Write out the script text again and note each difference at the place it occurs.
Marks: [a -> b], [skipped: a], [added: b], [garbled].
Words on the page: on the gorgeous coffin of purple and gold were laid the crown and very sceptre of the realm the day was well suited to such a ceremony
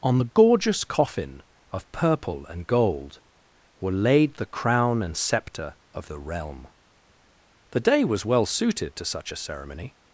on the gorgeous coffin of purple and gold were laid the crown and [skipped: very] sceptre of the realm the day was well suited to such a ceremony